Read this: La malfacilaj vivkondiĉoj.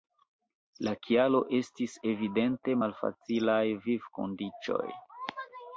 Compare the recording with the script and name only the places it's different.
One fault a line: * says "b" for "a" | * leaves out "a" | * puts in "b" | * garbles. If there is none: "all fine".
* puts in "kialo estis evidente"